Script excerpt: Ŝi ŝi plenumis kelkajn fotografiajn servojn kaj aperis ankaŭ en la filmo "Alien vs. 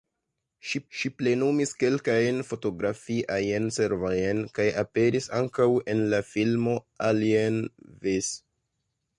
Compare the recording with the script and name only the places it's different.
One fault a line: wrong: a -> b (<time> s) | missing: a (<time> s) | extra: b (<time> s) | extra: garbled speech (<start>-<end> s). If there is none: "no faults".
no faults